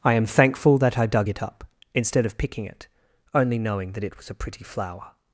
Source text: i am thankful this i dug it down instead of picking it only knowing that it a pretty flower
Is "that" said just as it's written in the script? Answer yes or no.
yes